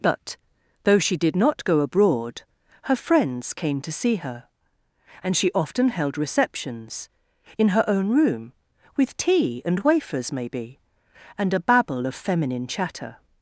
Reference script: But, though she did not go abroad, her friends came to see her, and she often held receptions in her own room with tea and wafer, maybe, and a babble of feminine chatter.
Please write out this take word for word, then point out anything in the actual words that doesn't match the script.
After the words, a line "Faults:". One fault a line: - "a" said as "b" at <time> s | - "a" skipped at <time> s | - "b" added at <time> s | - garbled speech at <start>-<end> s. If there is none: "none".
But, though she did not go abroad, her friends came to see her, and she often held receptions in her own room with tea and wafers, maybe, and a babble of feminine chatter.
Faults:
- "wafer" said as "wafers" at 9.8 s